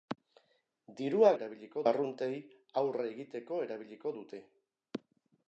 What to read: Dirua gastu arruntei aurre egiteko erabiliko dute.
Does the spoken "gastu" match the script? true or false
false